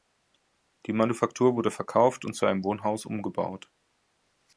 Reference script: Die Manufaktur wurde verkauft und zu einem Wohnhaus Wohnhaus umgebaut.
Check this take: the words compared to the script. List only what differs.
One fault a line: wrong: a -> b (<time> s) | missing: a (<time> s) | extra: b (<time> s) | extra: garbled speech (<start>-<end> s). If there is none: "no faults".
missing: Wohnhaus (3.0 s)